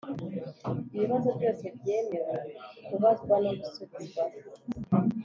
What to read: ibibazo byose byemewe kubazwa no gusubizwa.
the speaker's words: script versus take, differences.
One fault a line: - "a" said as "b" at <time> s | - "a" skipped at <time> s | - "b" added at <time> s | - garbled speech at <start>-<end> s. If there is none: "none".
none